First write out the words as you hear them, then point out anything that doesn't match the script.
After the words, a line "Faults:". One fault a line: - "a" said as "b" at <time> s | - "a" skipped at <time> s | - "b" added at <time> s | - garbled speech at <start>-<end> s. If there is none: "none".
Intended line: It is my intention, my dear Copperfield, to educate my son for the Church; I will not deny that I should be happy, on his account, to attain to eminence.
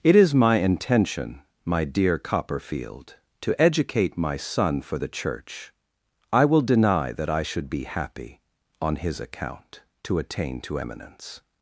It is my intention, my dear Copperfield, to educate my son for the Church; I will deny that I should be happy, on his account, to attain to eminence.
Faults:
- "not" skipped at 6.6 s